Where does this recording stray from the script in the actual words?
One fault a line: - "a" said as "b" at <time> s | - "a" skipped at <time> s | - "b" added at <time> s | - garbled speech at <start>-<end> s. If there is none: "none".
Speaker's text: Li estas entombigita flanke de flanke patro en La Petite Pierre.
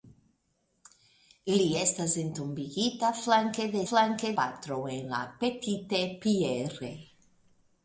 none